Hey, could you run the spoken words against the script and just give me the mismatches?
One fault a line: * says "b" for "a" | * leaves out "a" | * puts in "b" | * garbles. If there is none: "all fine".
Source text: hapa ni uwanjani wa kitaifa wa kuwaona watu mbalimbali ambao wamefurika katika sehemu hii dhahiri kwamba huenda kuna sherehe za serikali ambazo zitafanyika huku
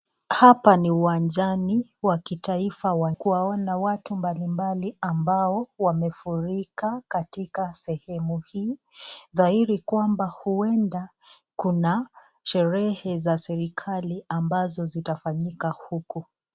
all fine